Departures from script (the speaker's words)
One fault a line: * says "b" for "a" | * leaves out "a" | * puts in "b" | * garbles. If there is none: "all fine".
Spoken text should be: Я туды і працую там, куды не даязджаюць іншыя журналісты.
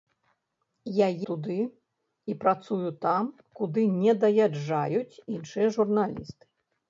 all fine